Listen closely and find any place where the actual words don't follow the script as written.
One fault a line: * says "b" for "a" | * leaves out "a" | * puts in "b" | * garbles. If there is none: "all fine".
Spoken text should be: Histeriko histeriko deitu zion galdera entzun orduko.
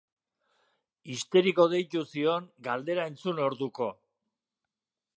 * leaves out "histeriko"